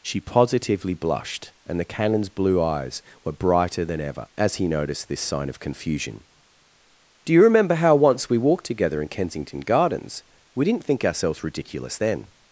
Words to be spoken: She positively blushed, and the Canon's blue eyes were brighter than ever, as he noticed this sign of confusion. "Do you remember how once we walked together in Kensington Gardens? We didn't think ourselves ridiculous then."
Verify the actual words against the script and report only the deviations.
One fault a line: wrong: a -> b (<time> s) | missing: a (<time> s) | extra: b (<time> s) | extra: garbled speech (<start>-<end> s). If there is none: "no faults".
no faults